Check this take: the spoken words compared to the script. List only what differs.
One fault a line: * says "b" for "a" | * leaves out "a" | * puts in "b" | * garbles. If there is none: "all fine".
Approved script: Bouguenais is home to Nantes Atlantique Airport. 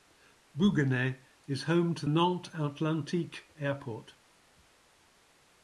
all fine